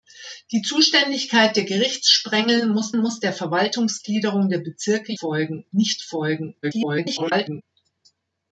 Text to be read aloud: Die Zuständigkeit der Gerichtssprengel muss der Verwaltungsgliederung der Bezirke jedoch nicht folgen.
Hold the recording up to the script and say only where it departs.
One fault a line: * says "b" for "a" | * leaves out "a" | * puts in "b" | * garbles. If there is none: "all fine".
* puts in "muss"
* says "folgen" for "jedoch"
* garbles